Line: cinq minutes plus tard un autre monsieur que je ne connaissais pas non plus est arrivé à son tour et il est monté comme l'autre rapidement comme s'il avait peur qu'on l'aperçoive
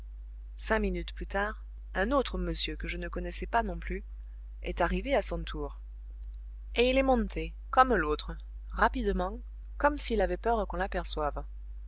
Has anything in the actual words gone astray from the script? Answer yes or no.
no